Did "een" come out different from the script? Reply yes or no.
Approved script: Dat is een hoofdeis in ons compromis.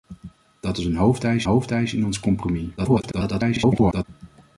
no